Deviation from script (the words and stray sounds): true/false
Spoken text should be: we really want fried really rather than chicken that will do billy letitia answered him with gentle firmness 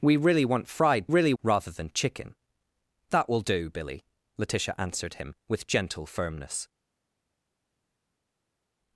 false